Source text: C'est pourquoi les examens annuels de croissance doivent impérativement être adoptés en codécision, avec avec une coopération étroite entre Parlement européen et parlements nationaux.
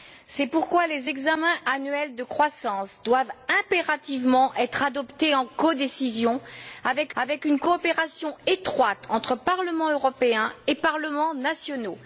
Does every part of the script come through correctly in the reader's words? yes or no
yes